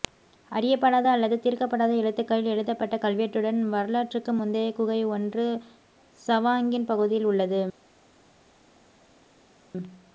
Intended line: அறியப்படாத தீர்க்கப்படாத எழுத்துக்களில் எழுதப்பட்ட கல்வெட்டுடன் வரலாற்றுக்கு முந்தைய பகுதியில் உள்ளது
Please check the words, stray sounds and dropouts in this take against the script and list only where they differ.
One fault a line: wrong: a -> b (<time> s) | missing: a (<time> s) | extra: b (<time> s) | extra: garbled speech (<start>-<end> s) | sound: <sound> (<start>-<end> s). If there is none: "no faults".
extra: அல்லது (1.1 s)
extra: குகை ஒன்று சவாங்கின் (4.7 s)